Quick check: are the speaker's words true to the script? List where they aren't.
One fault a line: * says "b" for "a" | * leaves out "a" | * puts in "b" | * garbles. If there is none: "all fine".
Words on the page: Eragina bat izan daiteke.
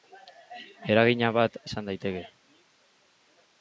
all fine